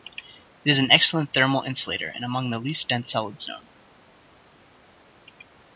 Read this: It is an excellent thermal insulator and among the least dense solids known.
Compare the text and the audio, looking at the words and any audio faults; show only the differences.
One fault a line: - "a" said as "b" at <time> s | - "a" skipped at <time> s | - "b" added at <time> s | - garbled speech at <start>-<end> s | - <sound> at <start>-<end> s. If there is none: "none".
none